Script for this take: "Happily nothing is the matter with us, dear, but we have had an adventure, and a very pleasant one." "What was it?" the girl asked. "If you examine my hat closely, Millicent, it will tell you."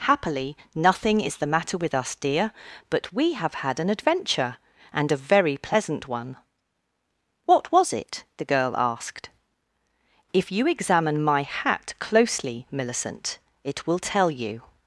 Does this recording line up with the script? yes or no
yes